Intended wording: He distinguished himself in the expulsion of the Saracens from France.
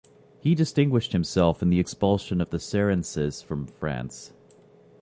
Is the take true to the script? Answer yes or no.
yes